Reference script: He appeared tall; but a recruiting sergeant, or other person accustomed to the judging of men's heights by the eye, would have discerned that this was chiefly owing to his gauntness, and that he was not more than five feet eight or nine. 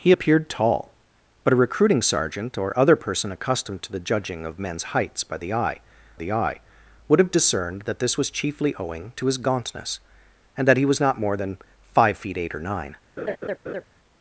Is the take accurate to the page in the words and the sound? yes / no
no